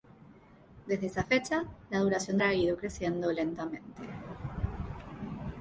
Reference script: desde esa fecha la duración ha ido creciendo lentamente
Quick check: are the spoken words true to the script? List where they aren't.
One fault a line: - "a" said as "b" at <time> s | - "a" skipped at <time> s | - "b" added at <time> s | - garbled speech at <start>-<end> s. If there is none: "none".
none